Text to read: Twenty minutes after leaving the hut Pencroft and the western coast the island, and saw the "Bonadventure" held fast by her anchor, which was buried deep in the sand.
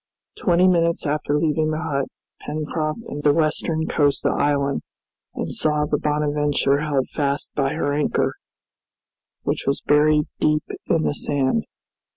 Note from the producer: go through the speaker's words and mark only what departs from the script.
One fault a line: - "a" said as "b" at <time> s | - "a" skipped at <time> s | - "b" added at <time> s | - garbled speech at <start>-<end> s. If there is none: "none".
none